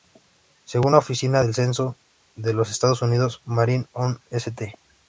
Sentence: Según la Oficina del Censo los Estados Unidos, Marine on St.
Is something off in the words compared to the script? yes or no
yes